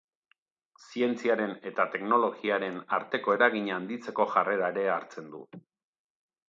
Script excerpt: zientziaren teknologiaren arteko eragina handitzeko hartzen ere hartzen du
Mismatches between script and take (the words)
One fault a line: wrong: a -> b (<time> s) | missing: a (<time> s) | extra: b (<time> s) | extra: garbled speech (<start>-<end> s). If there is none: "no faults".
extra: eta (1.7 s)
wrong: hartzen -> jarrera (4.4 s)